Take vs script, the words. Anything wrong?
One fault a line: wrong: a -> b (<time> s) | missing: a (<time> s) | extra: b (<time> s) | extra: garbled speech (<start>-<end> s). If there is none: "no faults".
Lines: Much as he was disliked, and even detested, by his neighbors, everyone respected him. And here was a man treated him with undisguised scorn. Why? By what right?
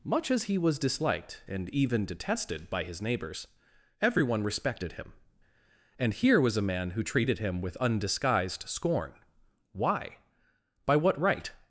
extra: who (6.9 s)